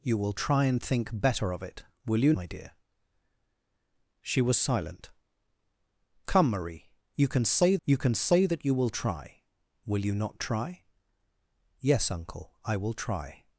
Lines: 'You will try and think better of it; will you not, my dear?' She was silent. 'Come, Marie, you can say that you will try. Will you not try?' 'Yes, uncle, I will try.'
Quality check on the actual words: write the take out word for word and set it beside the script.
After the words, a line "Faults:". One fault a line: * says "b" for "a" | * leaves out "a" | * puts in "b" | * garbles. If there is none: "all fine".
'You will try and think better of it; will you my dear?' She was silent. 'Come, Marie, you can say you can say that you will try. Will you not try?' 'Yes, uncle, I will try.'
Faults:
* leaves out "not"
* puts in "you can say"